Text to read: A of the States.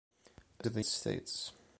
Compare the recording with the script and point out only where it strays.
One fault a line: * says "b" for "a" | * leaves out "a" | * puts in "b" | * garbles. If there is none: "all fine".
all fine